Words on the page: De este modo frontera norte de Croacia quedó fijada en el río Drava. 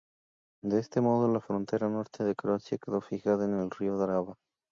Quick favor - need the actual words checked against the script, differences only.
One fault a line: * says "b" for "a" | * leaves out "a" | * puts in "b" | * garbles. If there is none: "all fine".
* puts in "la"